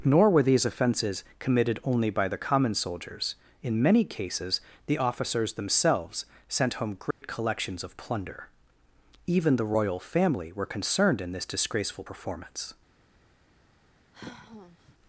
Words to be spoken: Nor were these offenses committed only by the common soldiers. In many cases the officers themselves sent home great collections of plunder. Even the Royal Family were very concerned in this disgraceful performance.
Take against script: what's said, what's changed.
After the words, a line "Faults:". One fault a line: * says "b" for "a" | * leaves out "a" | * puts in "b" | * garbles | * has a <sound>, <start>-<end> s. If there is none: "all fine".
Nor were these offenses committed only by the common soldiers. In many cases the officers themselves sent home great collections of plunder. Even the Royal Family were concerned in this disgraceful performance.
Faults:
* has a dropout, 7.1-7.2 s
* leaves out "very"
* has a sigh, 14.1-14.9 s